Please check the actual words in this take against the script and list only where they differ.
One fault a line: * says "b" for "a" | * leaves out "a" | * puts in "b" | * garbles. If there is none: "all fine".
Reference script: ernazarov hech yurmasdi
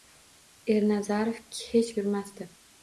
all fine